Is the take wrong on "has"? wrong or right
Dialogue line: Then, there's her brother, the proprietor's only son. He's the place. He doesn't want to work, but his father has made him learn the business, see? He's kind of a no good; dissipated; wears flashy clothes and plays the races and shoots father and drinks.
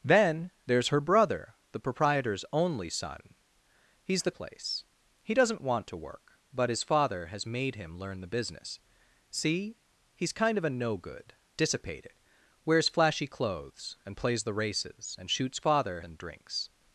right